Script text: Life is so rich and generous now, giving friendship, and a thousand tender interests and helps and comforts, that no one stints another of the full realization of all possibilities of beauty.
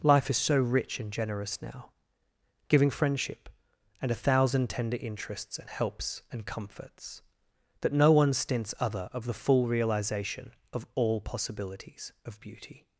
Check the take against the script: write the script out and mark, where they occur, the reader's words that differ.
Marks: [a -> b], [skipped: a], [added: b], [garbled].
Life is so rich and generous now, giving friendship, and a thousand tender interests and helps and comforts, that no one stints [another -> other] of the full realization of all possibilities of beauty.